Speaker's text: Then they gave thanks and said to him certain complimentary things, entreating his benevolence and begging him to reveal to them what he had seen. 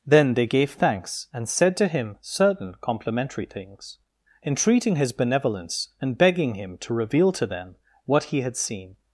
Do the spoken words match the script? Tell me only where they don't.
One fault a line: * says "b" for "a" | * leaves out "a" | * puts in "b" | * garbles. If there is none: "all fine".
all fine